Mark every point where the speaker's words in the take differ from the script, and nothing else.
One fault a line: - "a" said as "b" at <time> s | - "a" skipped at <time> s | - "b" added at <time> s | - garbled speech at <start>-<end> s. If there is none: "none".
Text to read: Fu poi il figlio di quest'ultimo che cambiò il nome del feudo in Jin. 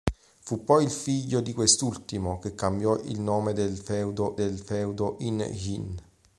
- "del feudo" added at 4.3 s